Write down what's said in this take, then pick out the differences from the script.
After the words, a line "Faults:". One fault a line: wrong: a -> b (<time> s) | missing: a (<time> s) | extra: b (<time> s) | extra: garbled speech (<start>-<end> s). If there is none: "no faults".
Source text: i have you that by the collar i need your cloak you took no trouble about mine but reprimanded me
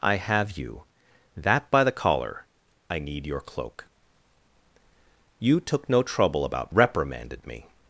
i have you that by the collar i need your cloak you took no trouble about reprimanded me
Faults:
missing: mine but (6.7 s)